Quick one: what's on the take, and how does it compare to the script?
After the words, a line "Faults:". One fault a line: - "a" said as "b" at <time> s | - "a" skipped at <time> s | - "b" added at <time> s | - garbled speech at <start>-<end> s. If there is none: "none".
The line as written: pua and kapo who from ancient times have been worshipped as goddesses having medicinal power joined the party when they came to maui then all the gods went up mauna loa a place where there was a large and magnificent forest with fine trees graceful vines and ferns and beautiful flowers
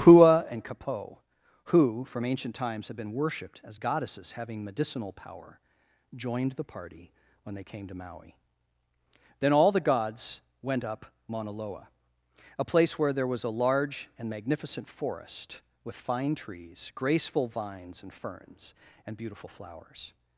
pua and kapo who from ancient times had been worshipped as goddesses having medicinal power joined the party when they came to maui then all the gods went up mauna loa a place where there was a large and magnificent forest with fine trees graceful vines and ferns and beautiful flowers
Faults:
- "have" said as "had" at 2.9 s